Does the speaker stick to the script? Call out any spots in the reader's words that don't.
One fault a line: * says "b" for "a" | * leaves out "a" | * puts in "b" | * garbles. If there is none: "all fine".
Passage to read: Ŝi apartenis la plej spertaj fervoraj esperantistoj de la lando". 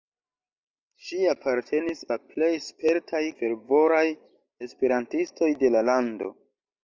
all fine